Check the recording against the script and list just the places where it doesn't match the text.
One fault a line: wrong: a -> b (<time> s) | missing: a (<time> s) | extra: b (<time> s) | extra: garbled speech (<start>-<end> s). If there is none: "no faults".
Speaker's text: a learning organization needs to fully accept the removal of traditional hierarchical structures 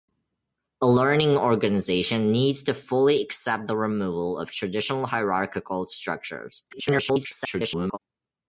extra: garbled speech (6.7-8.0 s)